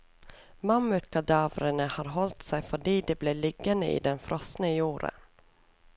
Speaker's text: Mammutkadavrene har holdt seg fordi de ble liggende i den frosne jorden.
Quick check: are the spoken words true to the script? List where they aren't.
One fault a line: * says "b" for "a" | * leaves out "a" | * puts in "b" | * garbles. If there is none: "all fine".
all fine